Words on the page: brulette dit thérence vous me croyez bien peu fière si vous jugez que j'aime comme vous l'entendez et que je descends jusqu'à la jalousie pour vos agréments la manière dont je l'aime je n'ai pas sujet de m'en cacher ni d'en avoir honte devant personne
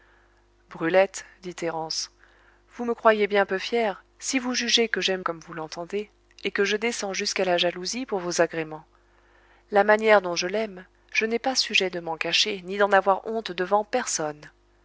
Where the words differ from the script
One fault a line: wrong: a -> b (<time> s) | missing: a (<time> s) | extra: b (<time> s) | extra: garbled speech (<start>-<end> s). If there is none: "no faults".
no faults